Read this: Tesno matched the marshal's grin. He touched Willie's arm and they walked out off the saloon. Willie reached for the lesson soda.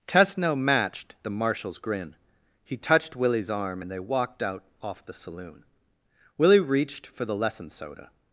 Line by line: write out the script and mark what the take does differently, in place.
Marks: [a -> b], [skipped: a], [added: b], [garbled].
Tesno matched the marshal's grin. He touched Willie's arm and they walked out off the saloon. Willie reached for the lesson soda.